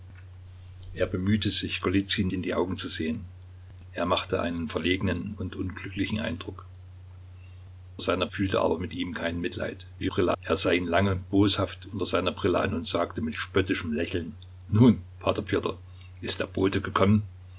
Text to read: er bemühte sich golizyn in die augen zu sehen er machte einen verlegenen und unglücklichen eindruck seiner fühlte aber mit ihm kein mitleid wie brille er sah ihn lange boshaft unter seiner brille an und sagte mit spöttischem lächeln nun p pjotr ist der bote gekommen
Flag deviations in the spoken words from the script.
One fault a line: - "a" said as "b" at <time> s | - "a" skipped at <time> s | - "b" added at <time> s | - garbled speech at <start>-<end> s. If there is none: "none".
none